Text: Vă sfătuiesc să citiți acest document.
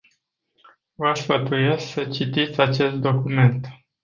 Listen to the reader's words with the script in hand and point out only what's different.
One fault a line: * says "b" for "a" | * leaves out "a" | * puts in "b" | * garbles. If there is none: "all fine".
all fine